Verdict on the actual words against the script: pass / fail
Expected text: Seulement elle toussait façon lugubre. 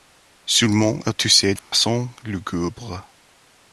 pass